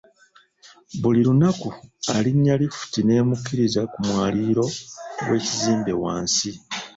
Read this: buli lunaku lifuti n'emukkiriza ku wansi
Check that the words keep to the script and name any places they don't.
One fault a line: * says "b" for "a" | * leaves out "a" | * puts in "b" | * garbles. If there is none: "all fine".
* puts in "alinnya"
* puts in "mwaliiro gw'ekizimbe"